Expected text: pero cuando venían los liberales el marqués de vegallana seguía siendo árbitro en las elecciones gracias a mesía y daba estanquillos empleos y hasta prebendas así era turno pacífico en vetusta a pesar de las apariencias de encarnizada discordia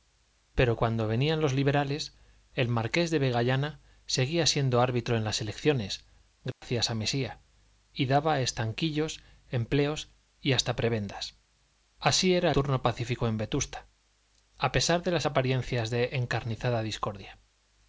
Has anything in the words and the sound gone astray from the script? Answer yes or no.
yes